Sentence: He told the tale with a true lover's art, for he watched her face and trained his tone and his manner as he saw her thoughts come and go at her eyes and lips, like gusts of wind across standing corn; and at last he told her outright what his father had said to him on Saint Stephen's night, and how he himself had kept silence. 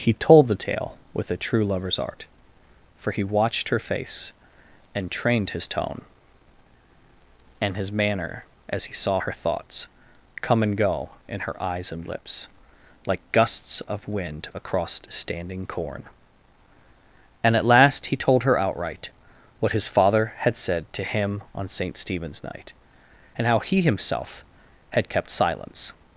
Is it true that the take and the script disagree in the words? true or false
true